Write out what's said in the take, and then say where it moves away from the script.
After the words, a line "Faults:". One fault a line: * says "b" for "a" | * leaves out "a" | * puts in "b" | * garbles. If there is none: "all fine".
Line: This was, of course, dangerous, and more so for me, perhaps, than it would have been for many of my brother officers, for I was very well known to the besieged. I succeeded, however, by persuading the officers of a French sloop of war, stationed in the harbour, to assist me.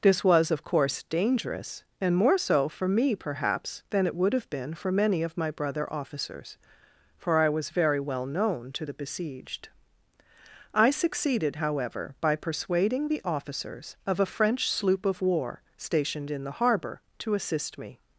This was, of course, dangerous, and more so for me, perhaps, than it would have been for many of my brother officers, for I was very well known to the besieged. I succeeded, however, by persuading the officers of a French sloop of war, stationed in the harbour, to assist me.
Faults:
all fine